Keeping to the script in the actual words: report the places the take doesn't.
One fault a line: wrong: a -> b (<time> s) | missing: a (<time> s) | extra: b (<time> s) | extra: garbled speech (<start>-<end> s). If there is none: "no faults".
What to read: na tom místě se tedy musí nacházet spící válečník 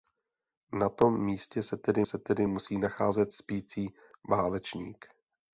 extra: se tedy (2.0 s)